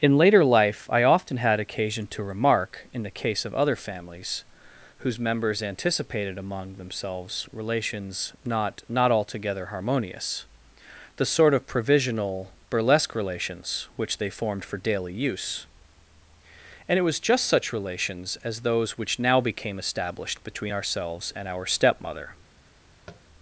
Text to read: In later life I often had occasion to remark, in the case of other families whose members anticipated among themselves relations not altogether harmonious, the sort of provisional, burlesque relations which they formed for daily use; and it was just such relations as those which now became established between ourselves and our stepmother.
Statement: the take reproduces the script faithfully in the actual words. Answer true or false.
false